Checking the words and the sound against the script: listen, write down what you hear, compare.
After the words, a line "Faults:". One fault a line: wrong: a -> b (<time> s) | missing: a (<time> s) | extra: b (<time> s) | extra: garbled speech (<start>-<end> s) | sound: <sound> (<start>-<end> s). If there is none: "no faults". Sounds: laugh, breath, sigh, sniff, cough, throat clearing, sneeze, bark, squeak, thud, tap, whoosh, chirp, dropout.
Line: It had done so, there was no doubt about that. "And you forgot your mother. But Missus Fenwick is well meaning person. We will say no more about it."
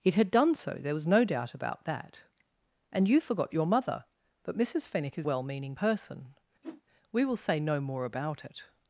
It had done so, there was no doubt about that. "And you forgot your mother. But Missus Fenwick is well meaning person. We will say no more about it."
Faults:
sound: whoosh (6.6-6.8 s)